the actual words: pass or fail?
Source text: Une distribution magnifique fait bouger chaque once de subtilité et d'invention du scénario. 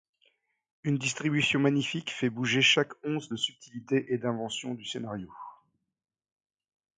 pass